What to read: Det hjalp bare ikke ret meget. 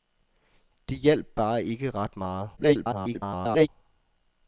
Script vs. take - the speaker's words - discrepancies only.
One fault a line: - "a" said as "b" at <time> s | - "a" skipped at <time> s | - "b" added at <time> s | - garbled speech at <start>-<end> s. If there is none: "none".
- garbled speech at 2.6-3.7 s